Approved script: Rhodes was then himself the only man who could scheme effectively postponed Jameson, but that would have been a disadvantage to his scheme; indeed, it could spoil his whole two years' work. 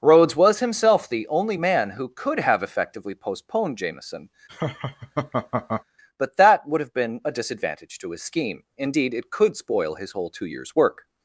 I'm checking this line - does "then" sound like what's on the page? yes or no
no